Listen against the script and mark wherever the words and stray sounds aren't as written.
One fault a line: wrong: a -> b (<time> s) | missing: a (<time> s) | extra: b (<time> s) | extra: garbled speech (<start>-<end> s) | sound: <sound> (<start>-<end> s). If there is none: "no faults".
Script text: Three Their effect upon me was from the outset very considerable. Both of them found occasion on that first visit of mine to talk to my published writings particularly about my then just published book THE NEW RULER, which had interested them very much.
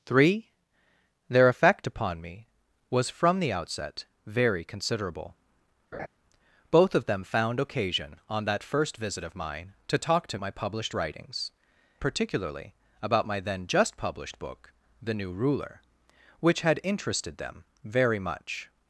sound: laugh (5.9-6.1 s)